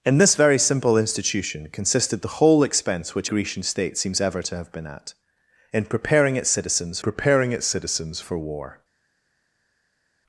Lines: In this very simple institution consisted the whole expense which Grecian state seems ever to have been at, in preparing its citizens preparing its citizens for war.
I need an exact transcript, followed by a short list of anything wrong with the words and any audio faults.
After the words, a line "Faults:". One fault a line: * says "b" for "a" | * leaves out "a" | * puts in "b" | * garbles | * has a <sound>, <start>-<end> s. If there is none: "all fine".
In this very simple institution consisted the whole expense which Grecian state seems ever to have been at, in preparing its citizens preparing its citizens for war.
Faults:
all fine